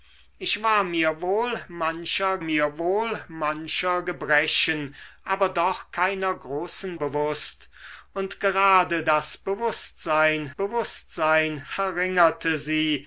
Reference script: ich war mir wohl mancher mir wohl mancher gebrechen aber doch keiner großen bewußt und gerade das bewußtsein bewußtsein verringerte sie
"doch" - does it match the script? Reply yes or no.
yes